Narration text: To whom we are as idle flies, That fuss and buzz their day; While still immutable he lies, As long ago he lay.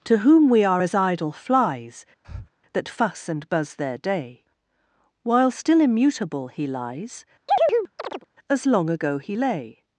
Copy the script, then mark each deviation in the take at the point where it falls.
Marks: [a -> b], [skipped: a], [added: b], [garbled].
To whom we are as idle flies, That fuss and buzz their day; While still immutable he lies, As long ago he lay.